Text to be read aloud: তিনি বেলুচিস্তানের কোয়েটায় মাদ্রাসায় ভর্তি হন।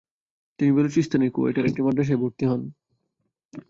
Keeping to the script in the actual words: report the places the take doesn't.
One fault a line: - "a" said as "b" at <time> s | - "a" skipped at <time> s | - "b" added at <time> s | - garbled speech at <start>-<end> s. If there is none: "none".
- "একটি" added at 1.7 s